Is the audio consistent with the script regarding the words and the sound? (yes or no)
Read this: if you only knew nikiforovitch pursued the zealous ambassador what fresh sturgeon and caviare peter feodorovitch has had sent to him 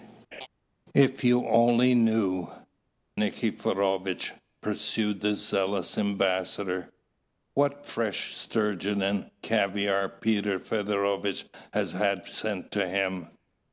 no